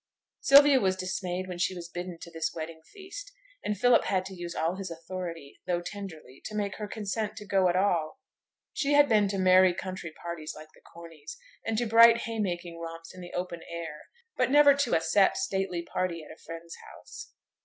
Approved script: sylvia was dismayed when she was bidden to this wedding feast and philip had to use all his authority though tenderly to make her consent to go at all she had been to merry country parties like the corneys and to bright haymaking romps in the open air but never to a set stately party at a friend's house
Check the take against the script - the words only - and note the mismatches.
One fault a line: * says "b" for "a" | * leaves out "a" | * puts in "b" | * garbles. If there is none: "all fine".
all fine